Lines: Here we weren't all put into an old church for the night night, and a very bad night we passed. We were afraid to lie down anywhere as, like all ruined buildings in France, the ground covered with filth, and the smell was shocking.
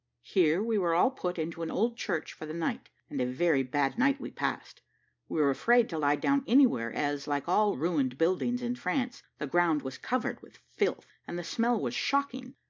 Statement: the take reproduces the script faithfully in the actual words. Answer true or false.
false